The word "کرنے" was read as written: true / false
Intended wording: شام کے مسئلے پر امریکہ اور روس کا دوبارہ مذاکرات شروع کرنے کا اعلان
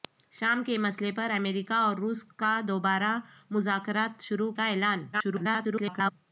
false